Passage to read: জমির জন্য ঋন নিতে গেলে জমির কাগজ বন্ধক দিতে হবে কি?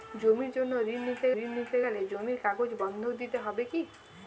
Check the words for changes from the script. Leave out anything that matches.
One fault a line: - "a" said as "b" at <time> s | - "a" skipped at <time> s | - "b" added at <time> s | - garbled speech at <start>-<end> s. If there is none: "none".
- "ঋন নিতে" added at 1.4 s